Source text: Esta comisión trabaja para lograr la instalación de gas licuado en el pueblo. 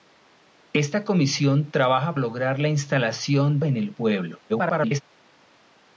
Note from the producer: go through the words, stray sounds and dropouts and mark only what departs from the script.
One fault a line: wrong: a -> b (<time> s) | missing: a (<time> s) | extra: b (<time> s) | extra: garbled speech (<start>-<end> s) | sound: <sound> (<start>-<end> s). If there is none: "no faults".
missing: para (2.2 s)
missing: de gas licuado (3.6 s)
extra: garbled speech (4.5-5.0 s)